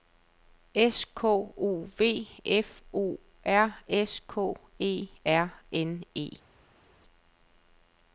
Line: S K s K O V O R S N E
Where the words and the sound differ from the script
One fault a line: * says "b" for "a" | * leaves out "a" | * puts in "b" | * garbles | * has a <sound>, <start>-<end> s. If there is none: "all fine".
* leaves out "s K"
* puts in "F"
* puts in "K E R"